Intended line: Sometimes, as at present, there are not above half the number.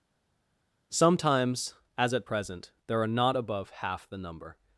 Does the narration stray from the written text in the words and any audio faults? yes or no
no